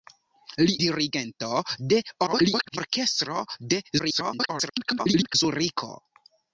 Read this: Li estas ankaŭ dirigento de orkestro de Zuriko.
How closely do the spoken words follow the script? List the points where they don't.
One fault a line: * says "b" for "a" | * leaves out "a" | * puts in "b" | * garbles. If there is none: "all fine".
* leaves out "estas ankaŭ"
* garbles
* garbles